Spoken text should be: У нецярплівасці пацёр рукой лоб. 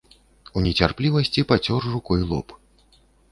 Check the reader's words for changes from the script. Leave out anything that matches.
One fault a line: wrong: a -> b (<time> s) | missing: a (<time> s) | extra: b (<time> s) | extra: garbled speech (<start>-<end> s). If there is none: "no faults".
no faults